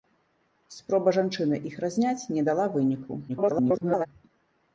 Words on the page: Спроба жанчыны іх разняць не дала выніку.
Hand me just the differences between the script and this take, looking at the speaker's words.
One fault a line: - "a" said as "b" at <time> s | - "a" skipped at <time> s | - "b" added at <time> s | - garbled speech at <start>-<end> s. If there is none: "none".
- garbled speech at 3.3-4.1 s